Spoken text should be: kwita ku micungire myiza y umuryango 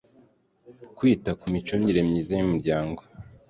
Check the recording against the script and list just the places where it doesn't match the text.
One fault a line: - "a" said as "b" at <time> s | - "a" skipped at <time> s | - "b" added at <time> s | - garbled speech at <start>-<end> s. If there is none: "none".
none